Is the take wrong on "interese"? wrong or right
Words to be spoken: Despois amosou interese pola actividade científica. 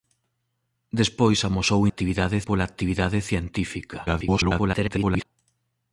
wrong